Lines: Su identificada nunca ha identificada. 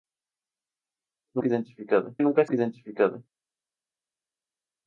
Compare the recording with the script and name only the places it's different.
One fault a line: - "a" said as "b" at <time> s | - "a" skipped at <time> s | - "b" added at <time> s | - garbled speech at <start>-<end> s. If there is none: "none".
none